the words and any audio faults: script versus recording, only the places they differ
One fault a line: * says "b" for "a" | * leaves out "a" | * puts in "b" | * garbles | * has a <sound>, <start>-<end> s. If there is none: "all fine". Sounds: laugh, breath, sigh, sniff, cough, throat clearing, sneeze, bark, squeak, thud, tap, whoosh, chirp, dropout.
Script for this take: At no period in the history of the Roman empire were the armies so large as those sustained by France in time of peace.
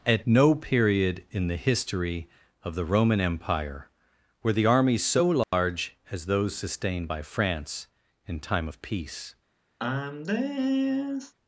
* has a dropout, 5.4-5.5 s
* has a sigh, 9.8-11.3 s